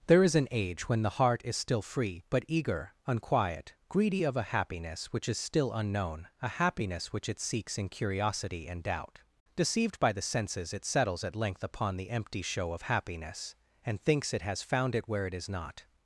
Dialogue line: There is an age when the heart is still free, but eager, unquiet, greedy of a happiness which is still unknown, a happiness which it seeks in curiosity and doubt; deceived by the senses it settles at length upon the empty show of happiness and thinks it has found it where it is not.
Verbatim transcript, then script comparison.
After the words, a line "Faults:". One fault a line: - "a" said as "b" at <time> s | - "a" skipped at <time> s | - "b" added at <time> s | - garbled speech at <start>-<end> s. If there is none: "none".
There is an age when the heart is still free, but eager, unquiet, greedy of a happiness which is still unknown, a happiness which it seeks in curiosity and doubt; deceived by the senses it settles at length upon the empty show of happiness and thinks it has found it where it is not.
Faults:
none